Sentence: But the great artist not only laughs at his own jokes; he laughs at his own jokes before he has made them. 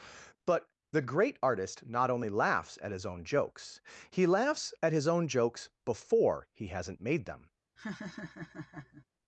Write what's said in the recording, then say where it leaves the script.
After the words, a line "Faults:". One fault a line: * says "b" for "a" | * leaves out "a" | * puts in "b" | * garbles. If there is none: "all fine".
But the great artist not only laughs at his own jokes; he laughs at his own jokes before he hasn't made them.
Faults:
* says "hasn't" for "has"